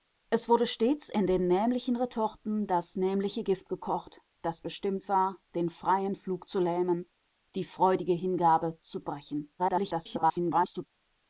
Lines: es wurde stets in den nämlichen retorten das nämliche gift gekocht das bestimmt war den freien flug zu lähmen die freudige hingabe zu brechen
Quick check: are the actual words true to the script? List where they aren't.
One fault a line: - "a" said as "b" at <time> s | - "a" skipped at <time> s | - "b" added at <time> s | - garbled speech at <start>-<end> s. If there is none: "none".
- garbled speech at 9.6-10.9 s